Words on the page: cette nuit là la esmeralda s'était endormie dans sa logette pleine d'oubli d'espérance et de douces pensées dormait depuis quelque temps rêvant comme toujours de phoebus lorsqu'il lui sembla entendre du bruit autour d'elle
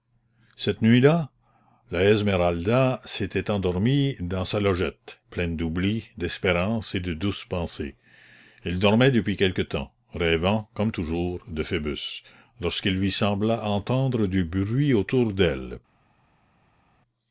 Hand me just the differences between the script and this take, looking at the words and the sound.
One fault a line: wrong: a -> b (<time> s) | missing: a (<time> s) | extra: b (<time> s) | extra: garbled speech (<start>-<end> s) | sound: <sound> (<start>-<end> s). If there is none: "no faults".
extra: elle (8.6 s)